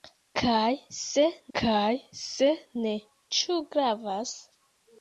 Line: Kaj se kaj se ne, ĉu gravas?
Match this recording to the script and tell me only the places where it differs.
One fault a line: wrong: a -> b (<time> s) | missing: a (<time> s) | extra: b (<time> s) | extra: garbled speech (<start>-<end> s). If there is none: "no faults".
no faults